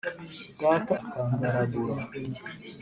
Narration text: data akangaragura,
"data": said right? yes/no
yes